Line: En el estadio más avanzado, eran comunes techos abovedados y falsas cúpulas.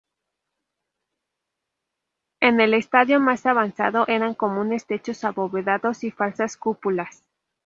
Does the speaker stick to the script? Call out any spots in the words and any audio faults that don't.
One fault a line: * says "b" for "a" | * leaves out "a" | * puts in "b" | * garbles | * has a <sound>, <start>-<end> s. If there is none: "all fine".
all fine